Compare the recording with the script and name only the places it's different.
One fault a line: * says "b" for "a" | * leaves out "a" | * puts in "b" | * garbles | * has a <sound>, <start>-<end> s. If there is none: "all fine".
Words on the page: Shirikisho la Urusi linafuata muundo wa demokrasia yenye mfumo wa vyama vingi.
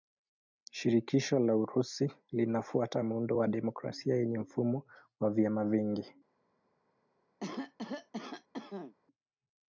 * has a cough, 7.4-9.0 s